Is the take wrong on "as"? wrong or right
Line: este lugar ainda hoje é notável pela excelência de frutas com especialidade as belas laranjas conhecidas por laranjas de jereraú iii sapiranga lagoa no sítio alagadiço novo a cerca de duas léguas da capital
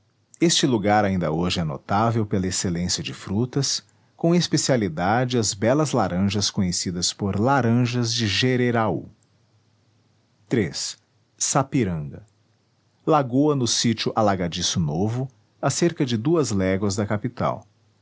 right